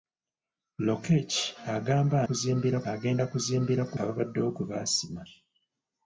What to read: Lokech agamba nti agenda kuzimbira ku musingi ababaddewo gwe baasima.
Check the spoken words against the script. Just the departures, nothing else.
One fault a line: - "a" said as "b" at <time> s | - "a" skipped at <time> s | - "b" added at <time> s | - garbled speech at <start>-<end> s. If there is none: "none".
- "nti" said as "kuzimbira" at 2.3 s
- "musingi" skipped at 4.0 s